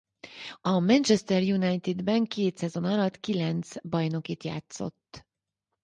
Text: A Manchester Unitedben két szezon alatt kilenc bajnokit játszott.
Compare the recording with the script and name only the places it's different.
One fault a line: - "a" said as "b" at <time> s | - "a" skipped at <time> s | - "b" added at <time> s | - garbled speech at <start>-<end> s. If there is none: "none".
none